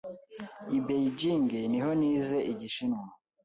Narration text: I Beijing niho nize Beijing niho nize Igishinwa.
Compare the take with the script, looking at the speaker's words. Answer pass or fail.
fail